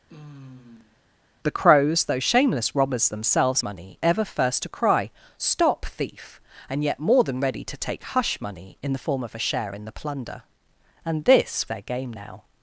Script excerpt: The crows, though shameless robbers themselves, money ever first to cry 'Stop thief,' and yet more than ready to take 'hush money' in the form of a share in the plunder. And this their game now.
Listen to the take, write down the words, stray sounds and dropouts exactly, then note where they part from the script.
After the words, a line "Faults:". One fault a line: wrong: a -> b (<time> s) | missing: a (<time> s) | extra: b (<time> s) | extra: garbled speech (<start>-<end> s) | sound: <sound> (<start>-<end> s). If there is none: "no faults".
The crows, though shameless robbers themselves, money ever first to cry 'Stop thief,' and yet more than ready to take 'hush money' in the form of a share in the plunder. And this their game now.
Faults:
sound: sigh (0.1-1.0 s)